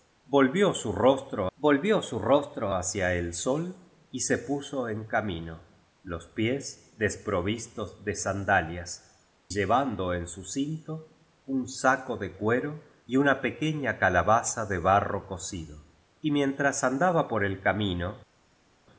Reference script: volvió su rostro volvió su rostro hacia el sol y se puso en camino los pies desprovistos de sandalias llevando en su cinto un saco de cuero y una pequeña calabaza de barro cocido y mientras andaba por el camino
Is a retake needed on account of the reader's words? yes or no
no